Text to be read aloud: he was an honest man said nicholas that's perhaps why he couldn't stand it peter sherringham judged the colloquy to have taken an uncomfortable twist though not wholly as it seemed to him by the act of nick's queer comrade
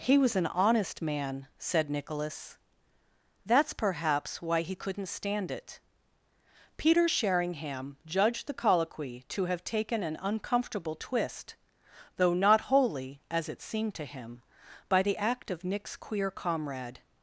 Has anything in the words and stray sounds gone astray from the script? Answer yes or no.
no